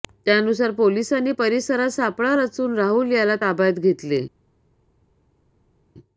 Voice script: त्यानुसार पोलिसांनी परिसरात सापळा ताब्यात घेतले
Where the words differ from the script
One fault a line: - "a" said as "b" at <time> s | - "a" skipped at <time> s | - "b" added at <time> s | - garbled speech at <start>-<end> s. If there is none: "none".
- "रचून राहुल याला" added at 2.3 s